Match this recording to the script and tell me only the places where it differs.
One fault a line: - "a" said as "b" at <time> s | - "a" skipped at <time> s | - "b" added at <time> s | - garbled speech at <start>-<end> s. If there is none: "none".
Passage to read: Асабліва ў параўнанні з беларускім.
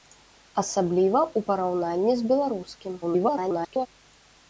- garbled speech at 3.0-3.9 s